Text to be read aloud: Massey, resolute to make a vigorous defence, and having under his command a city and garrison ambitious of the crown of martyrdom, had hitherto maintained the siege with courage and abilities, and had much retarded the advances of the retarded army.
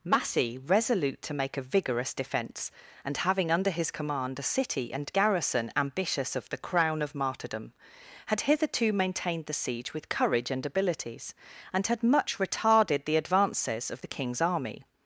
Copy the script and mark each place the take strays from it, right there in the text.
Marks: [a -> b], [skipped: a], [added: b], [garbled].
Massey, resolute to make a vigorous defence, and having under his command a city and garrison ambitious of the crown of martyrdom, had hitherto maintained the siege with courage and abilities, and had much retarded the advances of the [retarded -> king's] army.